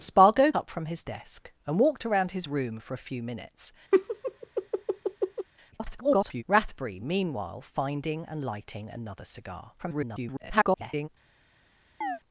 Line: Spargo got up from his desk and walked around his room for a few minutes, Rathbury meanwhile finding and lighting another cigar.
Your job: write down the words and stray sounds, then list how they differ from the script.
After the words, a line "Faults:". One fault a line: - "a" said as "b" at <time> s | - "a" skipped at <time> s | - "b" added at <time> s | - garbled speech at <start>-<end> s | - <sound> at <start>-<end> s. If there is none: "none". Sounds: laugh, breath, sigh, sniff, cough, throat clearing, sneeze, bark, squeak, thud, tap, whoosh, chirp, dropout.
Spargo up from his desk and walked around his room for a few minutes, [garbled] Rathbury meanwhile finding and lighting another cigar. [garbled]
Faults:
- "got" skipped at 0.5 s
- laugh at 3.9-5.5 s
- garbled speech at 5.7-6.4 s
- garbled speech at 9.8-11.1 s
- chirp at 12.0-12.2 s